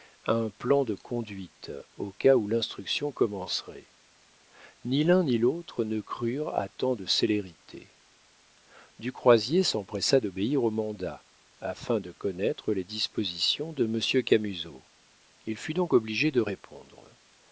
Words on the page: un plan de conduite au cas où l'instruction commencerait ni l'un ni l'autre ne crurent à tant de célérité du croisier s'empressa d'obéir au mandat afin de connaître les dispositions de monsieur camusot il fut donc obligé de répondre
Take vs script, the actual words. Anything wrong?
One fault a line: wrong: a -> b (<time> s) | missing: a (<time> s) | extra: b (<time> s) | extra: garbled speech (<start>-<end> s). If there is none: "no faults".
no faults